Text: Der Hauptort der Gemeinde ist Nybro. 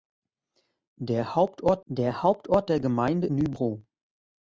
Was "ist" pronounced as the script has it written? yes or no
no